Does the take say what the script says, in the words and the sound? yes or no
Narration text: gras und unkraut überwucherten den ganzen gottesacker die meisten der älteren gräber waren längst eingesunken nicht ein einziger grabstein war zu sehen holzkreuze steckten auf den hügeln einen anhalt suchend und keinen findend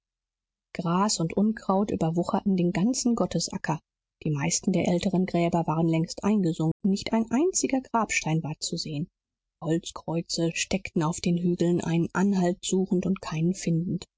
no